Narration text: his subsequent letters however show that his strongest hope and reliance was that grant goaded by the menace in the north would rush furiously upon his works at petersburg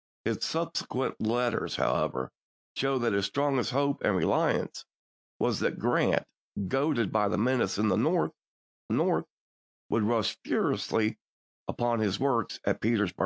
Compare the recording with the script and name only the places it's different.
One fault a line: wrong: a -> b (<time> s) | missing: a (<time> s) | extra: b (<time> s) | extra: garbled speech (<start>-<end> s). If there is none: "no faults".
extra: north (8.9 s)